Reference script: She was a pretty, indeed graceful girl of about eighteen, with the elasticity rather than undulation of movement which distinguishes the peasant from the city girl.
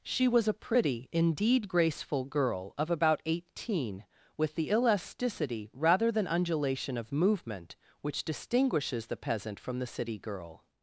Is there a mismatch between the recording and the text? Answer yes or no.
no